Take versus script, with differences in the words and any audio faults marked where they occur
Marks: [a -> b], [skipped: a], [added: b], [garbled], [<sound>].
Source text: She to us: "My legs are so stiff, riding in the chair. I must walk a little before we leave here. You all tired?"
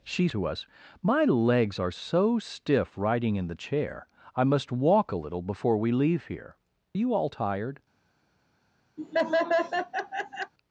She to us: "My legs are so stiff, riding in the chair. I must walk a little before we leave here. You all tired?" [laugh]